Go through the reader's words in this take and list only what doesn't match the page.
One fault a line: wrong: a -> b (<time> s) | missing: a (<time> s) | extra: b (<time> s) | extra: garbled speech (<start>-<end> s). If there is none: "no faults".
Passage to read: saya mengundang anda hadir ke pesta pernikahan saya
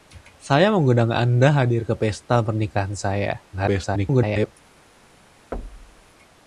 extra: garbled speech (3.5-4.5 s)